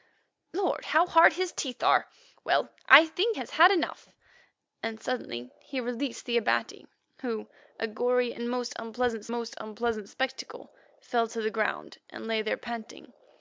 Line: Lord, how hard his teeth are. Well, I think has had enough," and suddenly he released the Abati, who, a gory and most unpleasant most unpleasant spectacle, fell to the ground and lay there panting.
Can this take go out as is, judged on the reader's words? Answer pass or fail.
pass